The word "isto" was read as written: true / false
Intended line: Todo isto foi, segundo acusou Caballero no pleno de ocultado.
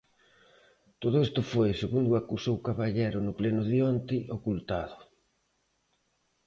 true